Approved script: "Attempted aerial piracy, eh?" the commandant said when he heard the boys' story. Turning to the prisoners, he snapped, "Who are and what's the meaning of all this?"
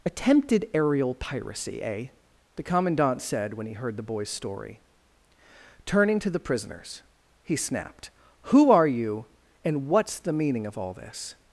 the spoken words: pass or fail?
fail